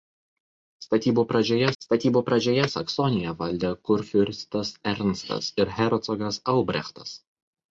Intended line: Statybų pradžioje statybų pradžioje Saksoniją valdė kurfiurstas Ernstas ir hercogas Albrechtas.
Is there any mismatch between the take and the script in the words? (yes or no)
no